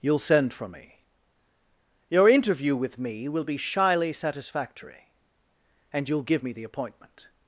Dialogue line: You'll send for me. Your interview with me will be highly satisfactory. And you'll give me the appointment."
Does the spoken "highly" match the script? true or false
false